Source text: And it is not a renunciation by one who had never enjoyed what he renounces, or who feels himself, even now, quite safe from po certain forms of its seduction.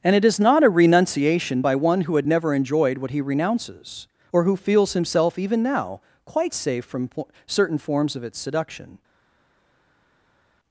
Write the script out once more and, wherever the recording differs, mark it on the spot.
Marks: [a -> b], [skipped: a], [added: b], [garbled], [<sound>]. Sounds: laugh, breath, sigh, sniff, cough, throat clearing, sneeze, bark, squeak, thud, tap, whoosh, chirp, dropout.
And it is not a renunciation by one who had never enjoyed what he renounces, or who feels himself, even now, quite safe from po certain forms of its seduction.